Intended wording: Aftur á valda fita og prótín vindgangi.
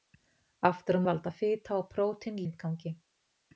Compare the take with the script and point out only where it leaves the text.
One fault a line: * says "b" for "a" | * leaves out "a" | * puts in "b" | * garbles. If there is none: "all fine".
all fine